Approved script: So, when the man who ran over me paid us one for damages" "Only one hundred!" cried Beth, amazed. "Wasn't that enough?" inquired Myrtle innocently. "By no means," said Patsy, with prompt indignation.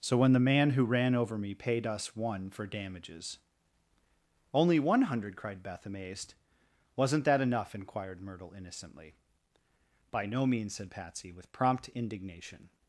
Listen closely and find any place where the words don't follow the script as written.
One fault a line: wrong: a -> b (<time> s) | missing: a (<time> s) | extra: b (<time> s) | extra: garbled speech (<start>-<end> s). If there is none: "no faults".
no faults